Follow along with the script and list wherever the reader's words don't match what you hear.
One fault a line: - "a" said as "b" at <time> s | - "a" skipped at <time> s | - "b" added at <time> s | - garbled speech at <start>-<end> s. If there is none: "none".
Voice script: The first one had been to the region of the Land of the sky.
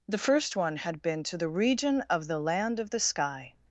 none